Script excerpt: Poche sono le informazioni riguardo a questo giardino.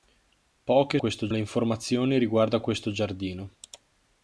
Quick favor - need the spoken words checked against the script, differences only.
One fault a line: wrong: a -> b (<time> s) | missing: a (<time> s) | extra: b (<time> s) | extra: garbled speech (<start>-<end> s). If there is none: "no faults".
wrong: sono -> questo (1.0 s)